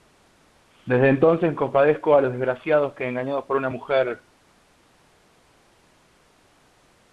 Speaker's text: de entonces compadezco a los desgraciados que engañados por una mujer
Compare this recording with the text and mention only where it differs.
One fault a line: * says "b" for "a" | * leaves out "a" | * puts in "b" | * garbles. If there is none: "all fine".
* says "desde" for "de"